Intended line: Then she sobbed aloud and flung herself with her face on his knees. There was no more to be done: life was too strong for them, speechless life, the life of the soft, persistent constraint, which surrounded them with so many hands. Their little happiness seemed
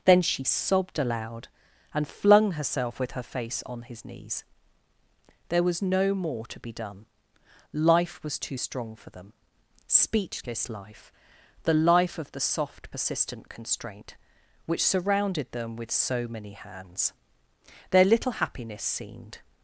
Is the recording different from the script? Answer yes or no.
no